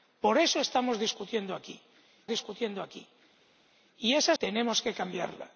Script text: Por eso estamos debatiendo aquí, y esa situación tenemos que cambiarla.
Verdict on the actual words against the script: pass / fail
fail